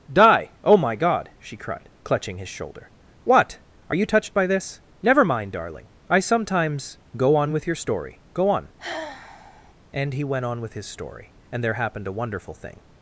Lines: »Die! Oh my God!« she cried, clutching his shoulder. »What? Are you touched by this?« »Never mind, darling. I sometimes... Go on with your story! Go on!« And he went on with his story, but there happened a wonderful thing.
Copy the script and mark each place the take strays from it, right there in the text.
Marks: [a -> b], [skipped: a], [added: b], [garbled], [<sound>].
»Die! Oh my God!« she cried, clutching his shoulder. »What? Are you touched by this?« »Never mind, darling. I sometimes... Go on with your story! Go on!« [sigh] And he went on with his story, [but -> and] there happened a wonderful thing.